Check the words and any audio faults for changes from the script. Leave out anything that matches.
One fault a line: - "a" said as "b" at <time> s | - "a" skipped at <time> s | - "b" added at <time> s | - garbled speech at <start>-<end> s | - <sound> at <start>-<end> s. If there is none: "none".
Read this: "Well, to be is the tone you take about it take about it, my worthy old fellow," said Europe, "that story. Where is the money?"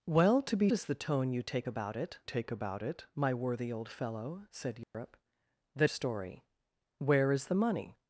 - dropout at 4.8-4.9 s